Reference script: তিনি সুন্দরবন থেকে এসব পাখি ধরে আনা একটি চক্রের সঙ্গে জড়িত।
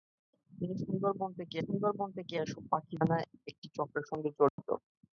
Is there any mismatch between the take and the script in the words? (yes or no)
yes